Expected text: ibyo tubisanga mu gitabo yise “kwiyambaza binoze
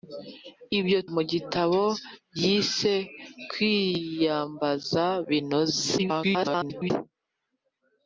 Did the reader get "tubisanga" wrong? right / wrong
wrong